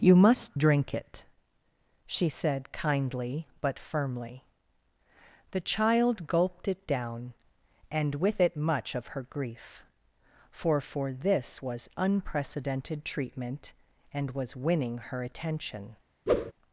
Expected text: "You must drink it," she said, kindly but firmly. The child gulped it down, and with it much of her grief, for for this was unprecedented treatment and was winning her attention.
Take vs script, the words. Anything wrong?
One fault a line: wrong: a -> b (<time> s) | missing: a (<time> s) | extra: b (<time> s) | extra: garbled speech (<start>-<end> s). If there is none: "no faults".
no faults